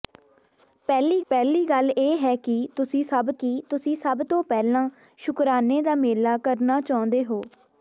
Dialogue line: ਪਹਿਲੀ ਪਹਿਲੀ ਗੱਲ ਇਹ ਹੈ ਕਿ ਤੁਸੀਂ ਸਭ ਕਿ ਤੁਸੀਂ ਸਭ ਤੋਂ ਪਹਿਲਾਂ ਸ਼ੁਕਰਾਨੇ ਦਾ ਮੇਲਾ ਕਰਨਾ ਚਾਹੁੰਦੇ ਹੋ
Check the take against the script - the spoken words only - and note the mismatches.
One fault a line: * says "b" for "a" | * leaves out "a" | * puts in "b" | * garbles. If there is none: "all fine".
all fine